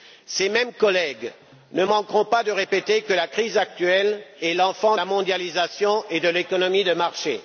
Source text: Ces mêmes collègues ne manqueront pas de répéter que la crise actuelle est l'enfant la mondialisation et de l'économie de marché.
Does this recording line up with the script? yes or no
yes